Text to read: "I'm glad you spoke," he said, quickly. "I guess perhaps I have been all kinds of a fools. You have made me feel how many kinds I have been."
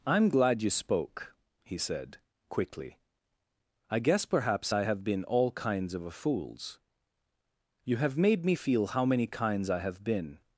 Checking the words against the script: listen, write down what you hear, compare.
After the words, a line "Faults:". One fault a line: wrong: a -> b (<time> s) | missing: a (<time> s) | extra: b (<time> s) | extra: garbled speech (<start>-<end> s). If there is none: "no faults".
"I'm glad you spoke," he said, quickly. "I guess perhaps I have been all kinds of a fools. You have made me feel how many kinds I have been."
Faults:
no faults